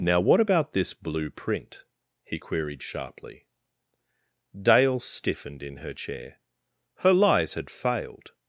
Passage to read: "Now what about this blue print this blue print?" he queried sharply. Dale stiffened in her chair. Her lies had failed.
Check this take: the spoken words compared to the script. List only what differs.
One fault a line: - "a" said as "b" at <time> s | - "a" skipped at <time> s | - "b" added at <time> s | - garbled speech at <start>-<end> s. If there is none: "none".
- "this blue print" skipped at 1.8 s